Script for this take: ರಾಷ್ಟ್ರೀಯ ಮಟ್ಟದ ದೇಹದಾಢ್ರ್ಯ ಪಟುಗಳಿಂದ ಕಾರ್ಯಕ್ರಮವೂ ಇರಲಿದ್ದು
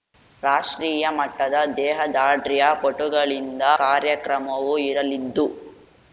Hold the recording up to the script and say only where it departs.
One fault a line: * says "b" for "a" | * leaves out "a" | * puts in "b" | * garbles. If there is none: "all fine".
all fine